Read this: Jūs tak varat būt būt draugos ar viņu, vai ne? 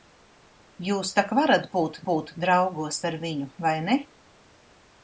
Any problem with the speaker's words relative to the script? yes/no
no